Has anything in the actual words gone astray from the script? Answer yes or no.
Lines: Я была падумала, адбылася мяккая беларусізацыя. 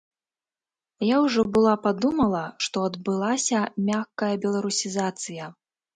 yes